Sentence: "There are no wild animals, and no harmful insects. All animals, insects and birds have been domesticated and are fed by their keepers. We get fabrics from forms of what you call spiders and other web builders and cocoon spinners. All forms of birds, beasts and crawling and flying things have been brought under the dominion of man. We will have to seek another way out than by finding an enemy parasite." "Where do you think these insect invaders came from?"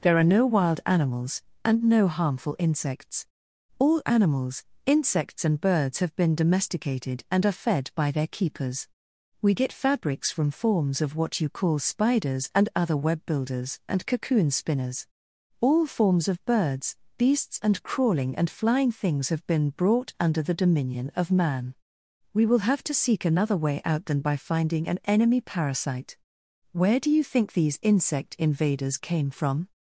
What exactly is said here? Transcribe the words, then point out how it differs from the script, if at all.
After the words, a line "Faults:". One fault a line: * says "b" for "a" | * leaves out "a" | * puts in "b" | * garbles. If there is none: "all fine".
"There are no wild animals, and no harmful insects. All animals, insects and birds have been domesticated and are fed by their keepers. We get fabrics from forms of what you call spiders and other web builders and cocoon spinners. All forms of birds, beasts and crawling and flying things have been brought under the dominion of man. We will have to seek another way out than by finding an enemy parasite." "Where do you think these insect invaders came from?"
Faults:
all fine